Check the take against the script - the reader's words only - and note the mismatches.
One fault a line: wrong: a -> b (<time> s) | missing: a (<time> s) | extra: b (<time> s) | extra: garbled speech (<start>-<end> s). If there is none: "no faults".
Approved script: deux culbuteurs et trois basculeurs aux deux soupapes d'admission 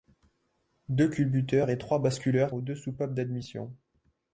no faults